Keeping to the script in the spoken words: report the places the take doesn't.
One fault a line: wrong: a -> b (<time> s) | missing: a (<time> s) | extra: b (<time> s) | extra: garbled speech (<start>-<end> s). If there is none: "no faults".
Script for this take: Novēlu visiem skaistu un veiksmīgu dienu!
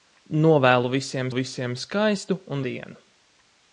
extra: visiem (1.4 s)
missing: veiksmīgu (2.6 s)